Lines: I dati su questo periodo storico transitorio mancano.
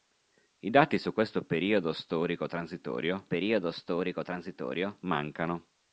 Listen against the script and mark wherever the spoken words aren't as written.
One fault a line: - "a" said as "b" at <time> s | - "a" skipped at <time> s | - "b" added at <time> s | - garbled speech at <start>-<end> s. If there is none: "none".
- "periodo storico transitorio" added at 3.2 s